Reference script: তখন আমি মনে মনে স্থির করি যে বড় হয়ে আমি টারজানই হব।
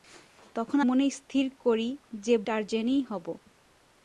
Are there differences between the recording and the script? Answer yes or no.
yes